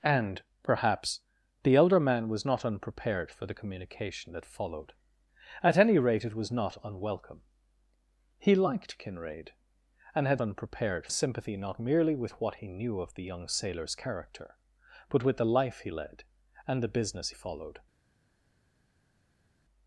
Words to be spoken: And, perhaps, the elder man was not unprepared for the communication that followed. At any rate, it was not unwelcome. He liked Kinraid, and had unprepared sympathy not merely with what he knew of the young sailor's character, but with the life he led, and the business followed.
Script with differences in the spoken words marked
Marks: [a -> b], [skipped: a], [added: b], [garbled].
And, perhaps, the elder man was not unprepared for the communication that followed. At any rate, it was not unwelcome. He liked Kinraid, and had unprepared sympathy not merely with what he knew of the young sailor's character, but with the life he led, and the business followed.